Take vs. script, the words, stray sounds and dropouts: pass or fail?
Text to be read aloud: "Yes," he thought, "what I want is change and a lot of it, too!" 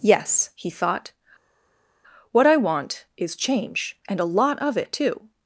pass